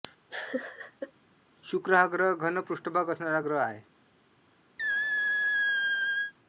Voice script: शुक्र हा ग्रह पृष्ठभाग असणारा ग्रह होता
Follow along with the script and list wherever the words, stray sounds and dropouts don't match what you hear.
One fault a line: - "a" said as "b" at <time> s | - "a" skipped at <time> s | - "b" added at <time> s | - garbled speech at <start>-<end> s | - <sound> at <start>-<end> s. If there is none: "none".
- laugh at 0.3-1.1 s
- "घन" added at 2.4 s
- "होता" said as "आहे" at 3.6 s
- squeak at 4.8-6.3 s